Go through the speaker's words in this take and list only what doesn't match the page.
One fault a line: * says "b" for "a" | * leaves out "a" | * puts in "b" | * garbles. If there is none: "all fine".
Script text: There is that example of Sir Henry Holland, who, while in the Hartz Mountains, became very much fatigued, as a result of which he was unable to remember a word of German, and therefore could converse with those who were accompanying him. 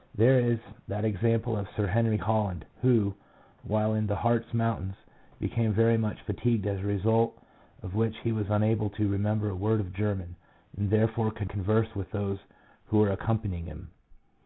all fine